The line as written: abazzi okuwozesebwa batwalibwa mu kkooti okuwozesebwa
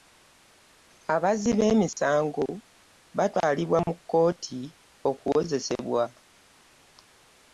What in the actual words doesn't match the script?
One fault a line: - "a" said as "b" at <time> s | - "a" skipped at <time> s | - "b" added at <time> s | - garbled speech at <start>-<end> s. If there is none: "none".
- "okuwozesebwa" said as "b'emisango" at 1.6 s